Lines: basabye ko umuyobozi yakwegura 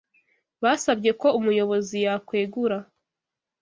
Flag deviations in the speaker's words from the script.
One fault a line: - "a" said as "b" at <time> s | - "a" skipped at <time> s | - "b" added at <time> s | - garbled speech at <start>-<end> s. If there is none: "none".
none